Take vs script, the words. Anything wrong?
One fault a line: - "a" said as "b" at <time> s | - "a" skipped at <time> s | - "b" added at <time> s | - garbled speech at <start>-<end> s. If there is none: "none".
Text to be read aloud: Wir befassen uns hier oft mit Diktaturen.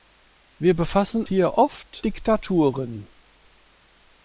- "uns" skipped at 1.3 s
- "mit" skipped at 2.0 s